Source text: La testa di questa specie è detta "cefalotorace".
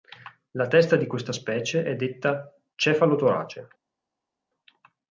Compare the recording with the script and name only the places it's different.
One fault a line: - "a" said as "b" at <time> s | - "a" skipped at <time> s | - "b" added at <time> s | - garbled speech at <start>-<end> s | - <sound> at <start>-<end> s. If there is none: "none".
none